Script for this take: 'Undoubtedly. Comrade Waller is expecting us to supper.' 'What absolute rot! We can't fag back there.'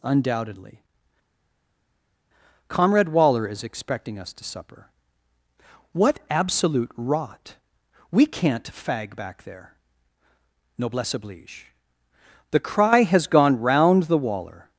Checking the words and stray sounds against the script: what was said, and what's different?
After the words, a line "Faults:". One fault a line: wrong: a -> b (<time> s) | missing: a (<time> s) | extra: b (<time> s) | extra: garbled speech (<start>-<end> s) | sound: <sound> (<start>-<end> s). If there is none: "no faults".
'Undoubtedly. Comrade Waller is expecting us to supper.' 'What absolute rot! We can't fag back there.' 'Noblesse oblige. The cry has gone round the Waller
Faults:
extra: Noblesse oblige The cry has gone round the Waller (10.8 s)